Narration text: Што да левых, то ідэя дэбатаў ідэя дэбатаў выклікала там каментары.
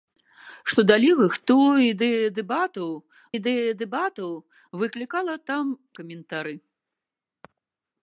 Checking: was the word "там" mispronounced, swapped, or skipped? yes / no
no